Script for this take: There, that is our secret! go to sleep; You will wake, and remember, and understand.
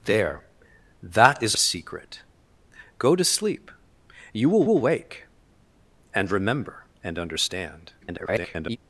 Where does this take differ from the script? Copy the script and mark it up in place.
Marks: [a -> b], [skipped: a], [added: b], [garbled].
There, that is [skipped: our] secret! go to sleep; You will [added: will] wake, and remember, and understand. [garbled]